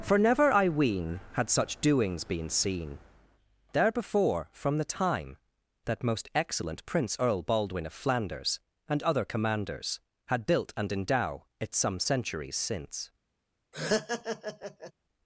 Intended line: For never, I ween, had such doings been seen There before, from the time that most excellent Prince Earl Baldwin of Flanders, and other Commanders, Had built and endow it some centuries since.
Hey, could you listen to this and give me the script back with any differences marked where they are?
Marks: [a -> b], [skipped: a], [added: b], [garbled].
For never, I ween, had such doings been seen There before, from the time that most excellent Prince Earl Baldwin of Flanders, and other Commanders, Had built and endow it some centuries since.